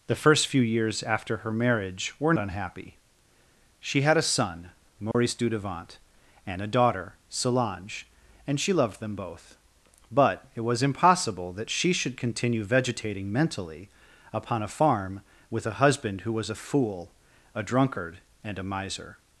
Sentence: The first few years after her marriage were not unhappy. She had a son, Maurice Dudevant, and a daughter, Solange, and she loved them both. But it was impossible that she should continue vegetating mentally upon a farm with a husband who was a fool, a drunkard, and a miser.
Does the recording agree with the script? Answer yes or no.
no